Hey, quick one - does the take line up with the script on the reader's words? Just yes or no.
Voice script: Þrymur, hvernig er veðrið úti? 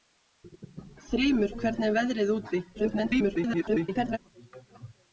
no